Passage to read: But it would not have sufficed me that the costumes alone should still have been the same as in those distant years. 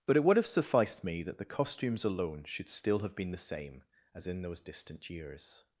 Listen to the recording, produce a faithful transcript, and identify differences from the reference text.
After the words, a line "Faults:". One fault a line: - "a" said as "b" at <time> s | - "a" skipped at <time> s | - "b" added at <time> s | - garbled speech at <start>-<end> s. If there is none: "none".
But it would have sufficed me that the costumes alone should still have been the same as in those distant years.
Faults:
- "not" skipped at 0.4 s